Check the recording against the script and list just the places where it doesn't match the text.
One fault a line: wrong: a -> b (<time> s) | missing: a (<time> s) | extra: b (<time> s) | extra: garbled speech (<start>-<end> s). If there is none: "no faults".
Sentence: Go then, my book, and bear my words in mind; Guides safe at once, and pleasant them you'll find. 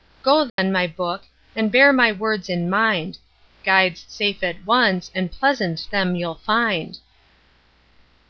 no faults